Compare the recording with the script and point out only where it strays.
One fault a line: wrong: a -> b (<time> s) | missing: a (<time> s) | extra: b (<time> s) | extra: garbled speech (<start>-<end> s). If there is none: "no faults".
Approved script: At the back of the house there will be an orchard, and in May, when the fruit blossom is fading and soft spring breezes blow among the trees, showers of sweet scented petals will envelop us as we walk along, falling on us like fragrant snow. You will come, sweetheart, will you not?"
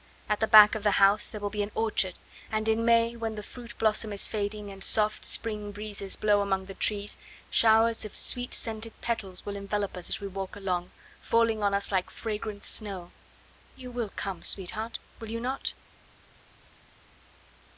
no faults